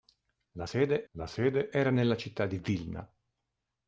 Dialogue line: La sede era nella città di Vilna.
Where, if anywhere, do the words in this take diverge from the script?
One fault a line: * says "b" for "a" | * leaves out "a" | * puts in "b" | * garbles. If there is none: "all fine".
* puts in "la sede"